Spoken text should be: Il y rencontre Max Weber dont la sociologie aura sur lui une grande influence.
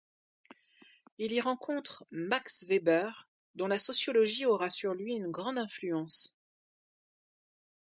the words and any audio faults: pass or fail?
pass